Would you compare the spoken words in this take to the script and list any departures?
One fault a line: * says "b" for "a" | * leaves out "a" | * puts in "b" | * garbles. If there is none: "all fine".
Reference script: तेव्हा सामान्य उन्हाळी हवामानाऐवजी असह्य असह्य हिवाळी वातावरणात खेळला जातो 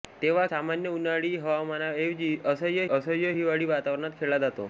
all fine